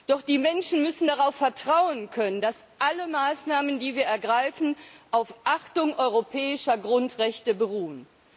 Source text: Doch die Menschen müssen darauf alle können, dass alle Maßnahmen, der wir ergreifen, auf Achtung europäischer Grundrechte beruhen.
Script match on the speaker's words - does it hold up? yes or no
no